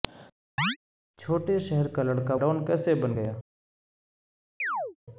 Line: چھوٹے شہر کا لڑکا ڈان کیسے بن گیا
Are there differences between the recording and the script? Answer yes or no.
no